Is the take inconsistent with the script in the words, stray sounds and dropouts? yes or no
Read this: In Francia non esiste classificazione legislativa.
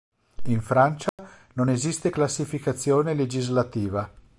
yes